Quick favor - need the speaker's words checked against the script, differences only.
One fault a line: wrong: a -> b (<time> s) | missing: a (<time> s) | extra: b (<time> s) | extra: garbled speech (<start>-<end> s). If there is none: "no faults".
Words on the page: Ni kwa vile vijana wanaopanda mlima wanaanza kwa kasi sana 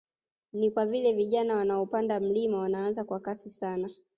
no faults